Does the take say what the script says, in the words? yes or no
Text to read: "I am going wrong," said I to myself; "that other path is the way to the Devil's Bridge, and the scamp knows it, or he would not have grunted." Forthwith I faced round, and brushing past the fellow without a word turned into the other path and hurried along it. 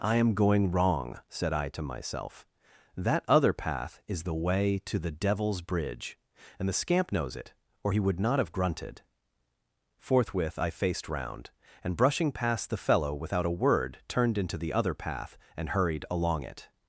yes